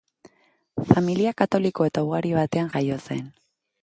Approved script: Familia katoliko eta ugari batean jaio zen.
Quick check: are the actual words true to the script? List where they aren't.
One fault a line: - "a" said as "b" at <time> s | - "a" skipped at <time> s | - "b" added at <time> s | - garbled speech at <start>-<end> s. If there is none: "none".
none